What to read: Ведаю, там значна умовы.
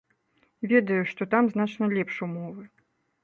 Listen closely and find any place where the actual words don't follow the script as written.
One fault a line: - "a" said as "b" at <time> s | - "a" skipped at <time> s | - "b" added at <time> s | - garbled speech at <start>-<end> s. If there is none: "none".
- "што" added at 1.1 s
- "лепш" added at 2.0 s